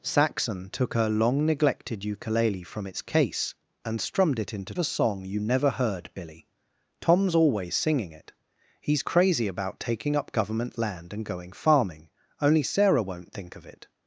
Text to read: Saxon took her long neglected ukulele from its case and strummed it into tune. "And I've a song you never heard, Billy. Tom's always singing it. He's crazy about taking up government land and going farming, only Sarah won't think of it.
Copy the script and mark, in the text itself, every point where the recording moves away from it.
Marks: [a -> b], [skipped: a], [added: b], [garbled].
Saxon took her long neglected ukulele from its case and strummed it into [skipped: tune. "And I've] a song you never heard, Billy. Tom's always singing it. He's crazy about taking up government land and going farming, only Sarah won't think of it.